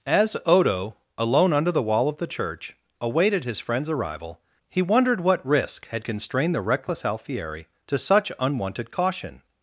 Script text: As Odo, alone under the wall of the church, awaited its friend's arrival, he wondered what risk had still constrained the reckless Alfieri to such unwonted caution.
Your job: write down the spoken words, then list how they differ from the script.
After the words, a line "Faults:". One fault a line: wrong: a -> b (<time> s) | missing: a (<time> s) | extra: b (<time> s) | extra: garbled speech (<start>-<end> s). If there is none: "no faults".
As Odo, alone under the wall of the church, awaited his friend's arrival, he wondered what risk had constrained the reckless Alfieri to such unwonted caution.
Faults:
wrong: its -> his (3.4 s)
missing: still (6.0 s)